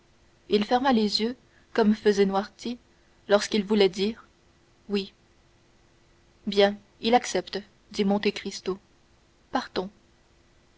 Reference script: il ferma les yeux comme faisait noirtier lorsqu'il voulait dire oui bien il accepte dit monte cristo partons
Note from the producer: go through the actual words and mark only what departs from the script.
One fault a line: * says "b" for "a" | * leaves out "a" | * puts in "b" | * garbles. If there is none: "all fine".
all fine